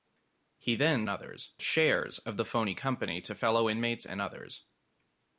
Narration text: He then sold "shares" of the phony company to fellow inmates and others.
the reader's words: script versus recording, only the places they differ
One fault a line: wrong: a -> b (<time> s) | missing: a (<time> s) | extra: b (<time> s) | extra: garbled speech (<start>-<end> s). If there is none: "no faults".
wrong: sold -> others (1.1 s)